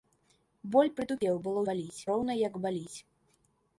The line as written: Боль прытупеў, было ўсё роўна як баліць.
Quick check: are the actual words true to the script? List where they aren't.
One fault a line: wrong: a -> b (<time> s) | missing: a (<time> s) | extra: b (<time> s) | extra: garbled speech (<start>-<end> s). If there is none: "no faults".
wrong: ўсё -> баліць (1.7 s)